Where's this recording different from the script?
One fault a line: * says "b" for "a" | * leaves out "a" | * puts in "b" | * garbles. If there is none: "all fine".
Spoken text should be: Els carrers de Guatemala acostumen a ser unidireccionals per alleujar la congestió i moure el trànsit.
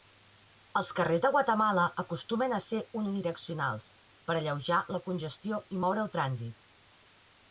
all fine